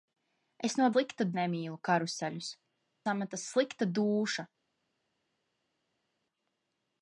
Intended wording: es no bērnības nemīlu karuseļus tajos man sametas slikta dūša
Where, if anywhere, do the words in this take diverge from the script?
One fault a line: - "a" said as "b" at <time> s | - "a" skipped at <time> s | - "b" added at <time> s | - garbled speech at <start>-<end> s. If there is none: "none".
- "bērnības" said as "slikta" at 0.9 s
- "tajos man" skipped at 2.5 s